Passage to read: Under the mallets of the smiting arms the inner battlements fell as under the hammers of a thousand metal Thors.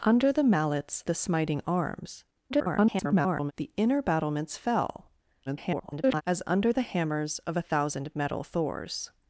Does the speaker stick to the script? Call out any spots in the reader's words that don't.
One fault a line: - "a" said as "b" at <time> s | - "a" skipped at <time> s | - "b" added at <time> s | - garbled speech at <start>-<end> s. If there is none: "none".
- "of" skipped at 1.0 s
- garbled speech at 2.5-3.5 s
- garbled speech at 5.5-6.2 s